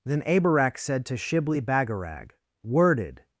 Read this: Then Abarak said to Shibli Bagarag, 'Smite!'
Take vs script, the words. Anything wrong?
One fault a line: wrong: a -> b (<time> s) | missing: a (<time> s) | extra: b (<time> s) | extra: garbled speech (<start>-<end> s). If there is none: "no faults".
wrong: Smite -> Worded (2.6 s)